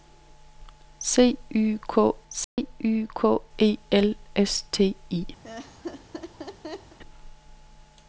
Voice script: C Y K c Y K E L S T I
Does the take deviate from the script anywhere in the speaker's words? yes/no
no